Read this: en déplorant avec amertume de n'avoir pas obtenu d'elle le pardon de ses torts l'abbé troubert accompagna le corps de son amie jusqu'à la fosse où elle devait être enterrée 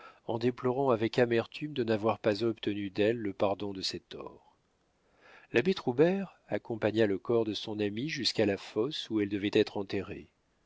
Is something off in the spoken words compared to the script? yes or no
no